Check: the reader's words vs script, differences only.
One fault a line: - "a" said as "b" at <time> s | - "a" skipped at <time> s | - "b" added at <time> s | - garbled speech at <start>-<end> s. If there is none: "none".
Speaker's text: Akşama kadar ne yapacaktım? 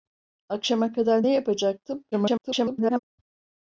- garbled speech at 2.1-3.0 s